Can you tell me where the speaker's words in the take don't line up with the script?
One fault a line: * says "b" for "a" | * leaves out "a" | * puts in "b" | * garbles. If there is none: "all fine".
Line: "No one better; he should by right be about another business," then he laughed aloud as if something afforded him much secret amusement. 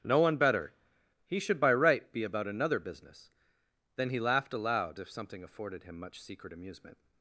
* leaves out "as"